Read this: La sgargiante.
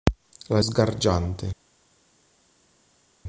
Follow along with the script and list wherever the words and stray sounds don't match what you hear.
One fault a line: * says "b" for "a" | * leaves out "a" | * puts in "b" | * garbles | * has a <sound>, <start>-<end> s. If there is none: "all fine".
all fine